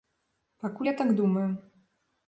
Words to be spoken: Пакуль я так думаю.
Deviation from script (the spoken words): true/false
false